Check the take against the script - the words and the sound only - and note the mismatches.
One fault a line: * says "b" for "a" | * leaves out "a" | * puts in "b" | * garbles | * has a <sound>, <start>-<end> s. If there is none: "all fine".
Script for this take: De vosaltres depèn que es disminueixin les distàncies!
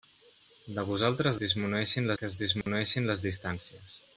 * says "disminueixin" for "depèn"
* has a dropout, 2.6-2.7 s